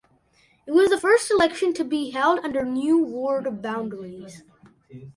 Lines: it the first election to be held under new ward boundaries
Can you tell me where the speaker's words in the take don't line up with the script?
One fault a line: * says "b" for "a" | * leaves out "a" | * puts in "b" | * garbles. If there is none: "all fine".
* puts in "was"